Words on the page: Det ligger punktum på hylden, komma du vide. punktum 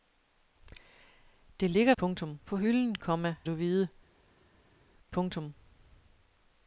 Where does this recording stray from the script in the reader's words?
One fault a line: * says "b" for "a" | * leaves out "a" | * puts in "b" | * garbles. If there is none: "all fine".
all fine